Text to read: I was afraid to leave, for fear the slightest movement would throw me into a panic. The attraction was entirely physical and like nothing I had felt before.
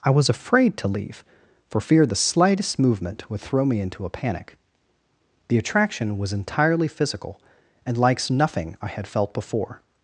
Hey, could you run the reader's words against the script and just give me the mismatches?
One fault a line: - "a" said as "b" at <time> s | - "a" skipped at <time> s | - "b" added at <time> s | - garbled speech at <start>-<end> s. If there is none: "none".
- "like" said as "likes" at 8.0 s